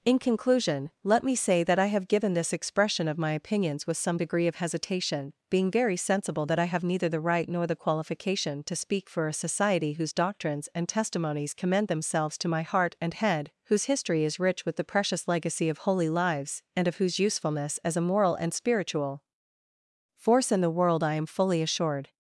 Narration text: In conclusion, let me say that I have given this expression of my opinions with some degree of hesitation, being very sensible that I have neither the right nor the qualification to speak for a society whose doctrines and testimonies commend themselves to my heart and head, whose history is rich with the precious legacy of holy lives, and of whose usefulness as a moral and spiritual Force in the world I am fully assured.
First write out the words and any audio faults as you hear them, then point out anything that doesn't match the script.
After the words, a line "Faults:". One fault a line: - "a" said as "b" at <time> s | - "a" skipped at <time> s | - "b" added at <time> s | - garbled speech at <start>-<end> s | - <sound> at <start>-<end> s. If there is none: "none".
In conclusion, let me say that I have given this expression of my opinions with some degree of hesitation, being very sensible that I have neither the right nor the qualification to speak for a society whose doctrines and testimonies commend themselves to my heart and head, whose history is rich with the precious legacy of holy lives, and of whose usefulness as a moral and spiritual Force in the world I am fully assured.
Faults:
none